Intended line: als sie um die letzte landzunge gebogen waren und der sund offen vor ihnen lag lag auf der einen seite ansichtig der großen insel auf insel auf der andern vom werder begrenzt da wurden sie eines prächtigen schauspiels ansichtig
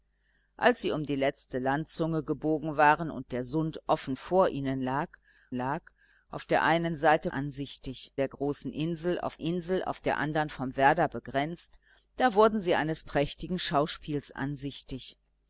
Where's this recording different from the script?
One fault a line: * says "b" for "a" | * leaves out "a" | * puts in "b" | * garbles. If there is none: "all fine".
all fine